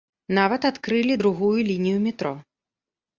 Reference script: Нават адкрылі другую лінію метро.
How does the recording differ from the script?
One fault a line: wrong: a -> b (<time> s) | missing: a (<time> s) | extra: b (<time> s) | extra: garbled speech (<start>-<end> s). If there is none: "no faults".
no faults